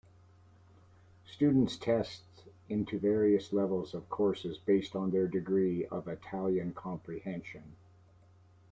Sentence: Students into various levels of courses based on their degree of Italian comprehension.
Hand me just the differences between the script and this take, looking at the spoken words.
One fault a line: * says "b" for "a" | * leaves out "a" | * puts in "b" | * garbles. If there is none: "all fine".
* puts in "test"